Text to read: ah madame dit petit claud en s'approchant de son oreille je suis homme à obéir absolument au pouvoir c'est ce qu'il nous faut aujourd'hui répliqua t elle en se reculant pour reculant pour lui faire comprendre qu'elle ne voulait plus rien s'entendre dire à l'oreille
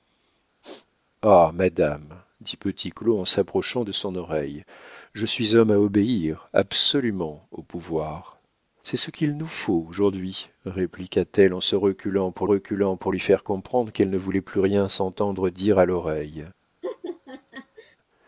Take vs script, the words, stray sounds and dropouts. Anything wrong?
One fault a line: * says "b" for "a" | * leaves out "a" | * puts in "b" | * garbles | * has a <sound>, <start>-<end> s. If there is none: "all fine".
* has a sneeze, 0.6-0.9 s
* has a laugh, 16.8-18.0 s